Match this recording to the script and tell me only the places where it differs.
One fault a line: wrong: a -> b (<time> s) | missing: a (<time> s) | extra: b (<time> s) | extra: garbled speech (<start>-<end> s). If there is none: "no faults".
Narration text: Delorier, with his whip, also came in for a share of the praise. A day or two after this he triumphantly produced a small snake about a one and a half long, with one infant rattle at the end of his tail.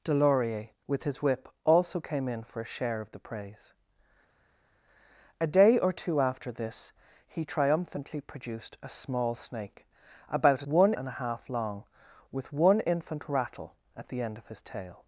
no faults